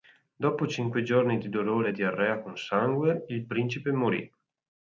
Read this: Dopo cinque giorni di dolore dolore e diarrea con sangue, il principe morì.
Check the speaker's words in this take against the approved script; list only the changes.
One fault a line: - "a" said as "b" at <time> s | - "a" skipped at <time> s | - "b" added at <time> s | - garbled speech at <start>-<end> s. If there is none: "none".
- "dolore" skipped at 1.9 s